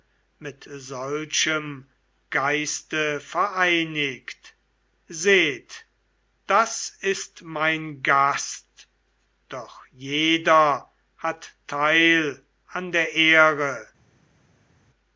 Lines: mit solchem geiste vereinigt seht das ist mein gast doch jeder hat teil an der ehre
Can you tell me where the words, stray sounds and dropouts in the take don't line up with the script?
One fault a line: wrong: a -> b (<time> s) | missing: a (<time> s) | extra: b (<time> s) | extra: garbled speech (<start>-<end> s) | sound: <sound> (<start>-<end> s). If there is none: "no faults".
no faults